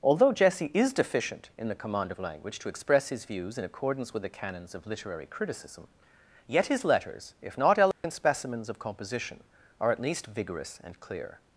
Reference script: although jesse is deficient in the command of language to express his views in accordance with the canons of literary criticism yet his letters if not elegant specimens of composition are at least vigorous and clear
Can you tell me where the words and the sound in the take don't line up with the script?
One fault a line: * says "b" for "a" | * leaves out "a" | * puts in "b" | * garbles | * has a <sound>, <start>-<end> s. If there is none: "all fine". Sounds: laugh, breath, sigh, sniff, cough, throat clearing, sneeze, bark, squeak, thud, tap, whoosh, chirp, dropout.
* has a dropout, 7.9-8.0 s